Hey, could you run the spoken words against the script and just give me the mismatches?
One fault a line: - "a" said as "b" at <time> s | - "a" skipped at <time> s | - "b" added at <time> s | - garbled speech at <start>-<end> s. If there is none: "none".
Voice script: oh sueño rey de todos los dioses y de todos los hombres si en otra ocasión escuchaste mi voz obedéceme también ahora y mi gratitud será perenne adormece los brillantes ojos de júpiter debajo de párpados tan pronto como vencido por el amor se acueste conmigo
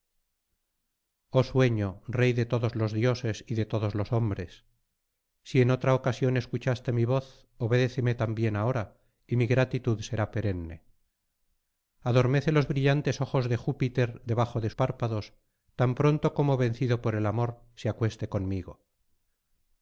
none